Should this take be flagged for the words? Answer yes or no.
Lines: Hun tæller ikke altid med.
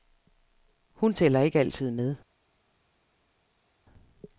no